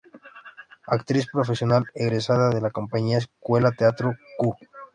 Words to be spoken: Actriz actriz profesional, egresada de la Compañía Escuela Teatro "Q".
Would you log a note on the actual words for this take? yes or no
yes